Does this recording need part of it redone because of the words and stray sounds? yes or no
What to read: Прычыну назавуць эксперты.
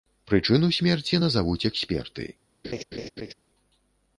yes